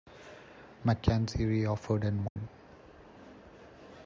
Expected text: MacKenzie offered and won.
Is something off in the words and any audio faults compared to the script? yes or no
yes